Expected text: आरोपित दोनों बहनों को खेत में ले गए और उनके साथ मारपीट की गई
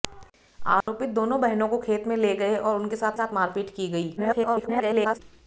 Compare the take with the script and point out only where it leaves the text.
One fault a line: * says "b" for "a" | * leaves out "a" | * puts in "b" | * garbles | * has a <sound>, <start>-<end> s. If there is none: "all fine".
* has a dropout, 0.8-0.9 s
* puts in "साथ"
* garbles